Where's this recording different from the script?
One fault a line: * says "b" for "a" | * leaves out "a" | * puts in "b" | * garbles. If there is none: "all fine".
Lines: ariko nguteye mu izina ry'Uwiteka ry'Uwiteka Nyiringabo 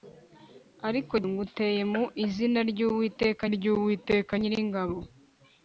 all fine